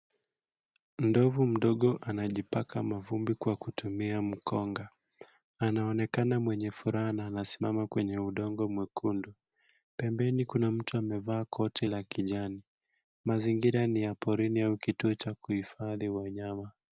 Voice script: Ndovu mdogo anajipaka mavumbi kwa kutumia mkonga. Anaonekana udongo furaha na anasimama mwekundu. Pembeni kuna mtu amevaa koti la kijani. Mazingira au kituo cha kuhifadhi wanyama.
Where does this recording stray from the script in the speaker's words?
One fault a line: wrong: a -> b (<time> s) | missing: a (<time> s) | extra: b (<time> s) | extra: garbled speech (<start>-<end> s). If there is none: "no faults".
wrong: udongo -> mwenye (6.4 s)
extra: kwenye udongo (7.9 s)
extra: ni ya porini (13.9 s)